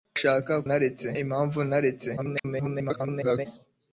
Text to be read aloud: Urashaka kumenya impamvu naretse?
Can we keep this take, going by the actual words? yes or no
no